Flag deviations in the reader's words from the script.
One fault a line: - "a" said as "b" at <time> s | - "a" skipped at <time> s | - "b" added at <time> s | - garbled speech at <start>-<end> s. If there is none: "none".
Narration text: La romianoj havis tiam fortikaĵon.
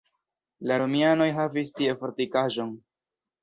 - "tiam" said as "tie" at 1.8 s